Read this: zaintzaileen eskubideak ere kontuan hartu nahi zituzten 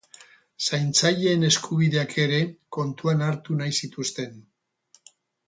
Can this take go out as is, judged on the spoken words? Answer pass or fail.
pass